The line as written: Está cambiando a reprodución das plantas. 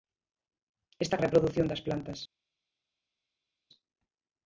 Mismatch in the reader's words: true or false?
true